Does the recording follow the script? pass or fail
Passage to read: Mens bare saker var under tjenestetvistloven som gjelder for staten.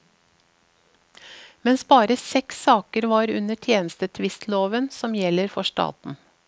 fail